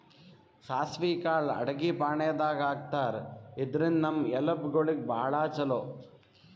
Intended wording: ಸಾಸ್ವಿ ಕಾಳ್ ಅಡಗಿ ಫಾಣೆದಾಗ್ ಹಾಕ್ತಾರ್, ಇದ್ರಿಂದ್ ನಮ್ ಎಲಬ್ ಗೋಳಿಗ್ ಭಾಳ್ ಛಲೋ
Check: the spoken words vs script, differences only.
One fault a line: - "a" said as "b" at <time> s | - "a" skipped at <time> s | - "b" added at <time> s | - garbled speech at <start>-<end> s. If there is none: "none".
none